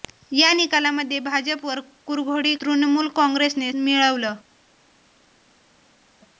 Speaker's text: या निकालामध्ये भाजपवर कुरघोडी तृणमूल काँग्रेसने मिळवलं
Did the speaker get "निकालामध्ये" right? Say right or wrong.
right